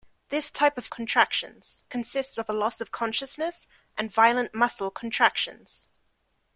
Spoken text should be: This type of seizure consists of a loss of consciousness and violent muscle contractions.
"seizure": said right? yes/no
no